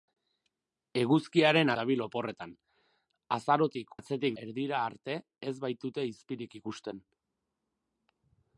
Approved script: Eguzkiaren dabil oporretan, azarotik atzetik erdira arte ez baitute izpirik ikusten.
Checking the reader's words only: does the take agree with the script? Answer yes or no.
yes